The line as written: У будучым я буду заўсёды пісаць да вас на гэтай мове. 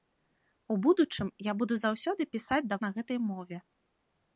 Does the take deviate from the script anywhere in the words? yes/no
yes